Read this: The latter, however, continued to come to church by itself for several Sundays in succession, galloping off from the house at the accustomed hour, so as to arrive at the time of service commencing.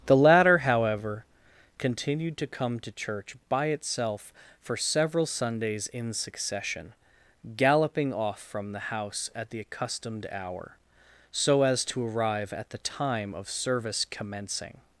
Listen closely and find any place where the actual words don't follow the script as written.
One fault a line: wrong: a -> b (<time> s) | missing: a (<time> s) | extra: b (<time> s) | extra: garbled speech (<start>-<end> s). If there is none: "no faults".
no faults